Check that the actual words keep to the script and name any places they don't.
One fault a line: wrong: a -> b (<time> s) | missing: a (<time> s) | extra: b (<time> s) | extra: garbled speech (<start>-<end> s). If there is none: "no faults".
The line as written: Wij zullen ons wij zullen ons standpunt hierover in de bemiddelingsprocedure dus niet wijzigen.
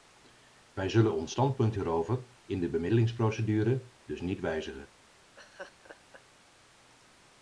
missing: wij zullen ons (1.3 s)